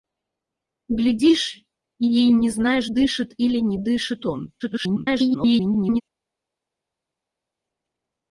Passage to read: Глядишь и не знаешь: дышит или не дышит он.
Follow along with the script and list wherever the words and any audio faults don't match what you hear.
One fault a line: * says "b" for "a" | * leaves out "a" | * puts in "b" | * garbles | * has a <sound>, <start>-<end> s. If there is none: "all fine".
* garbles